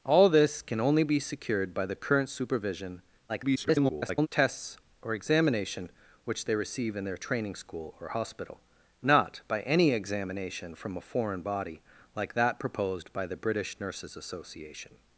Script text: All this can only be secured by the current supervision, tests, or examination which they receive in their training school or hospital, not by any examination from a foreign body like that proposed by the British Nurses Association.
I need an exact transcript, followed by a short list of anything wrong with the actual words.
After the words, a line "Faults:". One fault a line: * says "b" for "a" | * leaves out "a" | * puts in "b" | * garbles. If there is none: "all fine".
All this can only be secured by the current supervision, [garbled] tests, or examination which they receive in their training school or hospital, not by any examination from a foreign body like that proposed by the British Nurses Association.
Faults:
* garbles